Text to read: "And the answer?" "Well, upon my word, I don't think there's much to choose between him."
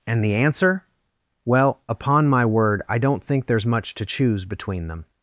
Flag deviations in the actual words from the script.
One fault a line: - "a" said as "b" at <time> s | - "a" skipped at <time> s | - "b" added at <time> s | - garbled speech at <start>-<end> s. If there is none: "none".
- "him" said as "them" at 4.9 s